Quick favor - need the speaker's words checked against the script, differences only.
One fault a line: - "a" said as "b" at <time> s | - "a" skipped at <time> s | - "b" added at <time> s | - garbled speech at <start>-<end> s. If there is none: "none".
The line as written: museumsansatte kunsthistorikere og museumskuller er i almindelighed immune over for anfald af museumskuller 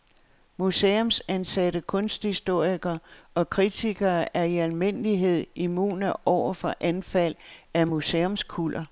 - "museumskuller" said as "kritikere" at 3.5 s